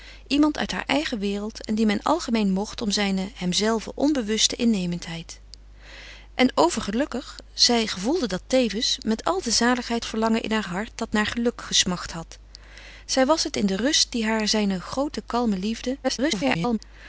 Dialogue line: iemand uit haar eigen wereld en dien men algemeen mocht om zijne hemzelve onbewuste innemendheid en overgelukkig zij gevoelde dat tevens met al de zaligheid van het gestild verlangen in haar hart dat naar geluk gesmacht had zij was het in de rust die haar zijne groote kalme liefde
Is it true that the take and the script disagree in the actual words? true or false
true